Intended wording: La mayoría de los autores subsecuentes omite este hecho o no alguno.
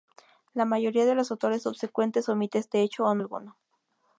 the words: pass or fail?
pass